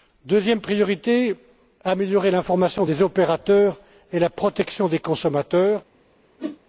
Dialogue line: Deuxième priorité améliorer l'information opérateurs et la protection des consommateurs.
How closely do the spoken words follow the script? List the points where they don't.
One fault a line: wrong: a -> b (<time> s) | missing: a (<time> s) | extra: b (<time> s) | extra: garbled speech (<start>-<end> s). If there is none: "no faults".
extra: des (2.8 s)